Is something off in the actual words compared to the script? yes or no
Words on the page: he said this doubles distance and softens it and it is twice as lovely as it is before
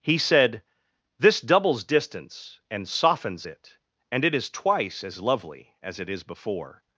no